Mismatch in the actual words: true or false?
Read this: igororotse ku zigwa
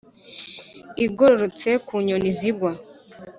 true